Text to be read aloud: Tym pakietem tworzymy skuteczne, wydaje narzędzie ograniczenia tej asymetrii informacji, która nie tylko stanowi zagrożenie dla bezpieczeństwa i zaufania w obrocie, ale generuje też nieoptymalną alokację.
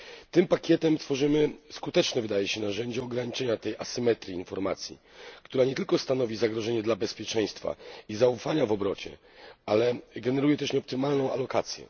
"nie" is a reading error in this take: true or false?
false